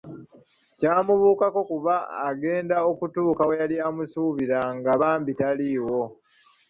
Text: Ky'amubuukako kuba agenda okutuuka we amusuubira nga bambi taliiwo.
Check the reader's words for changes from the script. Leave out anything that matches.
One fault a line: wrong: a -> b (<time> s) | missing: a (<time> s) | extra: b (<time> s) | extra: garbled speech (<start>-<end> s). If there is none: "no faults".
extra: yali (3.6 s)